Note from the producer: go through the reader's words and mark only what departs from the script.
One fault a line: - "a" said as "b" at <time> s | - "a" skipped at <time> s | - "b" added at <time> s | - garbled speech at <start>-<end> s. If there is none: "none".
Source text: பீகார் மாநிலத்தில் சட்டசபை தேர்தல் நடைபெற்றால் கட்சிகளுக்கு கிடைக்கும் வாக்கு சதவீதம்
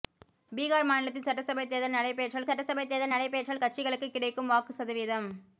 - "சட்டசபை தேர்தல் நடைபெற்றால்" added at 2.5 s